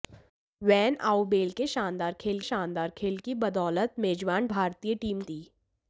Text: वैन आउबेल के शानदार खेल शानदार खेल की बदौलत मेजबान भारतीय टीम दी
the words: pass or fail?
pass